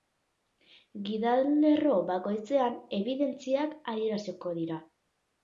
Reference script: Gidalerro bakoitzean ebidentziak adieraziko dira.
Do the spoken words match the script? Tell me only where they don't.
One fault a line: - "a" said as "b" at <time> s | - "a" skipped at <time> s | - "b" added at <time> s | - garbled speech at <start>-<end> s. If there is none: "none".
none